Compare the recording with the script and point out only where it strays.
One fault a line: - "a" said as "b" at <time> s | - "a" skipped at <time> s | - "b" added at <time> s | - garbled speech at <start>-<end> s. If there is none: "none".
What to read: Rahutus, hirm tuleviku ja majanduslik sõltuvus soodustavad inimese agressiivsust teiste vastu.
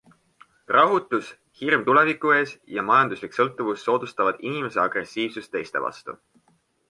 - "ees" added at 2.4 s